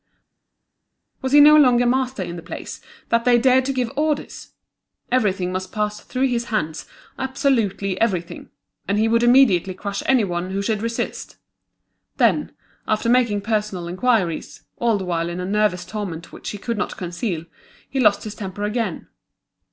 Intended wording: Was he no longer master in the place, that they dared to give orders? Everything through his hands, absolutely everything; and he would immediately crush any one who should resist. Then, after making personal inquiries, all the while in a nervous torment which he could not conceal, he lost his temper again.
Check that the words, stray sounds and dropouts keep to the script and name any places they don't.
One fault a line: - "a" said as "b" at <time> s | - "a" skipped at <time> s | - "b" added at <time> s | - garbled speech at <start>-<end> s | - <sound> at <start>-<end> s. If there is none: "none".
- "must pass" added at 5.5 s